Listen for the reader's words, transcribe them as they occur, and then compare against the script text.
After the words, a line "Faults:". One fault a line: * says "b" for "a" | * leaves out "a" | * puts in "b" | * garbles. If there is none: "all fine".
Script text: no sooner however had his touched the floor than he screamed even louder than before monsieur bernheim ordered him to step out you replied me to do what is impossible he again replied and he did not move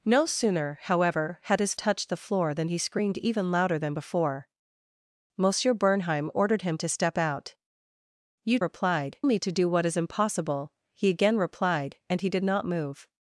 no sooner however had his touched the floor than he screamed even louder than before monsieur bernheim ordered him to step out you replied me to do what is impossible he again replied and he did not move
Faults:
all fine